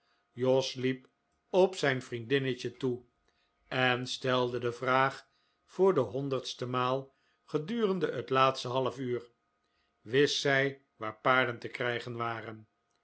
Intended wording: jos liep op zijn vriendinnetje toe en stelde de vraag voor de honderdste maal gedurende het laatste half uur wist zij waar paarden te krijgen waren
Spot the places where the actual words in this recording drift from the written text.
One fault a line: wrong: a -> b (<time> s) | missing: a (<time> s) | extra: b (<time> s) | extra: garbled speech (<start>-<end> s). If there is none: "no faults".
no faults